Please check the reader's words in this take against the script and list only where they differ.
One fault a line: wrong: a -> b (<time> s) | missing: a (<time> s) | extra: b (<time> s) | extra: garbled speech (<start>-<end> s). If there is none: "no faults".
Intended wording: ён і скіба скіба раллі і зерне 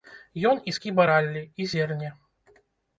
missing: скіба (1.1 s)